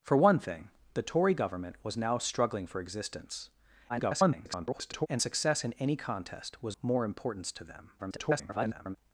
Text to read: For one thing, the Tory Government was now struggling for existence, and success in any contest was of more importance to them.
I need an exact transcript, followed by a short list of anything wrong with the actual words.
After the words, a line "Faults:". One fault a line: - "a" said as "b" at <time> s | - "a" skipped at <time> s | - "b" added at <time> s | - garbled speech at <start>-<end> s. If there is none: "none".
For one thing, the Tory Government was now struggling for existence, [garbled] and success in any contest was more importance to them. [garbled]
Faults:
- garbled speech at 3.9-5.1 s
- "of" skipped at 6.8 s
- garbled speech at 8.0-9.0 s